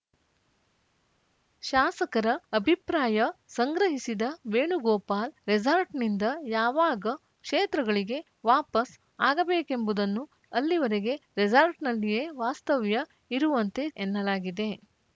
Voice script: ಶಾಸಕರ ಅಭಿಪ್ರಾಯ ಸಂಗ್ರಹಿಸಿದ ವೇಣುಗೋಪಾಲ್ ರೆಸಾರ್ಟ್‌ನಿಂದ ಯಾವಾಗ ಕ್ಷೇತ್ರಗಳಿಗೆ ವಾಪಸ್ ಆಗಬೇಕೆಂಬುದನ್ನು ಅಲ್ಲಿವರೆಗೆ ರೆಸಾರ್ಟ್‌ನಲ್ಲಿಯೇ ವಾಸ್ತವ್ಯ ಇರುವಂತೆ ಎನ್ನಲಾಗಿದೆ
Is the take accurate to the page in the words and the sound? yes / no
yes